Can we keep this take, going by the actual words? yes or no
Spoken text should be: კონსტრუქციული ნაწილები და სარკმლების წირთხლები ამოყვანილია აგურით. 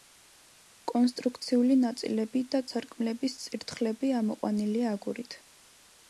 yes